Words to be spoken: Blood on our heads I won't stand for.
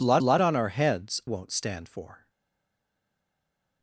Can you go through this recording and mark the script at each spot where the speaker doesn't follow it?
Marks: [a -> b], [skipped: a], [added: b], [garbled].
Blood [added: blood] on our heads [skipped: I] won't stand for.